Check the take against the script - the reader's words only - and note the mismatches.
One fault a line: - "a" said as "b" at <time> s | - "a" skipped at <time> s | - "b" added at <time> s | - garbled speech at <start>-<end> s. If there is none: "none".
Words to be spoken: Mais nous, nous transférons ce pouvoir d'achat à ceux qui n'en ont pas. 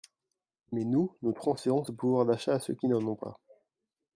none